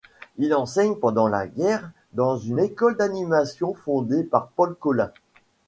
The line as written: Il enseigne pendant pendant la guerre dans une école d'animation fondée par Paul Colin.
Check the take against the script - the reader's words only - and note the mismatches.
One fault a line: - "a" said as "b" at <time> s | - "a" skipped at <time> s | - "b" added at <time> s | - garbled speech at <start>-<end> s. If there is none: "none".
- "pendant" skipped at 1.3 s